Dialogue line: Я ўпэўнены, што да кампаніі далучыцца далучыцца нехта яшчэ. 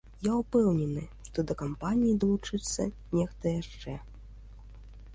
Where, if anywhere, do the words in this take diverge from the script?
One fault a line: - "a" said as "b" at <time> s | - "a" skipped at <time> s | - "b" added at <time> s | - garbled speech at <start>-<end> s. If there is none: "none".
- "далучыцца" skipped at 2.9 s